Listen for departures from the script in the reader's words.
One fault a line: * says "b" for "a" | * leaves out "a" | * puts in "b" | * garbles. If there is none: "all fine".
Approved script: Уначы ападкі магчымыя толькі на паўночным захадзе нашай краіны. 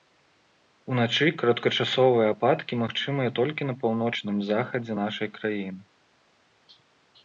* puts in "кароткачасовыя"